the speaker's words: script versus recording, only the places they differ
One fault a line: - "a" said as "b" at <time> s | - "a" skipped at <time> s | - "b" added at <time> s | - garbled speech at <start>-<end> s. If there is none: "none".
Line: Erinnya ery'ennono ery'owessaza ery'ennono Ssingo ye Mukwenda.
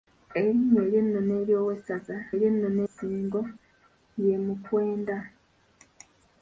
none